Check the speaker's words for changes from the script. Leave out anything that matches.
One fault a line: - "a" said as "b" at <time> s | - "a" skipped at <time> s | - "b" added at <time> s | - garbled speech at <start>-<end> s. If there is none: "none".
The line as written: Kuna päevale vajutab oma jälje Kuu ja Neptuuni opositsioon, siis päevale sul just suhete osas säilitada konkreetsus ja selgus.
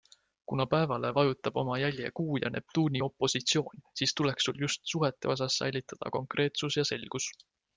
- "päevale" said as "tuleks" at 4.1 s